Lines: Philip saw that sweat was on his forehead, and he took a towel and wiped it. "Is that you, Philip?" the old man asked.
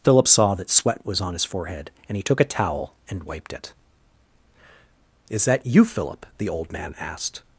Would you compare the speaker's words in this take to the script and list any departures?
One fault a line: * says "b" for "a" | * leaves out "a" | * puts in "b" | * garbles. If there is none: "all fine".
all fine